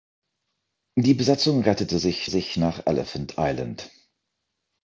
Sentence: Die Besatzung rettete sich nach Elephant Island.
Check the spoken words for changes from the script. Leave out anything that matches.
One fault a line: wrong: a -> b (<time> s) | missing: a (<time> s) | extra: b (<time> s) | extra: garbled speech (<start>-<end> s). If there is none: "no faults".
extra: sich (2.3 s)